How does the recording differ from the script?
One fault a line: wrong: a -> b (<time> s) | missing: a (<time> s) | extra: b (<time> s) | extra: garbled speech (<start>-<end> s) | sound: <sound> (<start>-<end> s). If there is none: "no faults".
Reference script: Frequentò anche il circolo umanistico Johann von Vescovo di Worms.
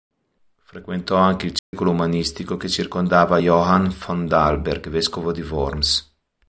sound: dropout (1.6-1.7 s)
extra: che circondava (2.6 s)
extra: Dalberg (4.3 s)